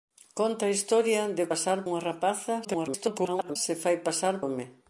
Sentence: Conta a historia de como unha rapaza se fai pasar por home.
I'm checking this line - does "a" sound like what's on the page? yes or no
yes